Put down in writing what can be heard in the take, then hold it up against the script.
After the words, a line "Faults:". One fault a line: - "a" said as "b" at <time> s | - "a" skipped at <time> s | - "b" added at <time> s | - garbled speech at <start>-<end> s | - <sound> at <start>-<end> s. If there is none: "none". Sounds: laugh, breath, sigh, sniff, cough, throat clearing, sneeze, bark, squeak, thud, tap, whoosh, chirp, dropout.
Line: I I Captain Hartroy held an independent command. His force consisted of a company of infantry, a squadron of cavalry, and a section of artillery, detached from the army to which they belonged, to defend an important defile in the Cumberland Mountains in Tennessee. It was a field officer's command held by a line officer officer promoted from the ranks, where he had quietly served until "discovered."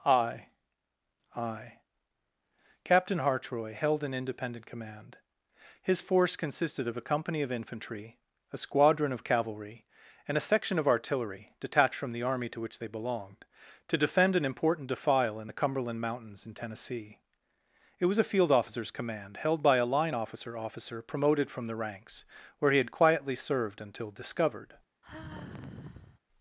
I I Captain Hartroy held an independent command. His force consisted of a company of infantry, a squadron of cavalry, and a section of artillery, detached from the army to which they belonged, to defend an important defile in the Cumberland Mountains in Tennessee. It was a field officer's command held by a line officer officer promoted from the ranks, where he had quietly served until "discovered."
Faults:
- sigh at 25.0-26.2 s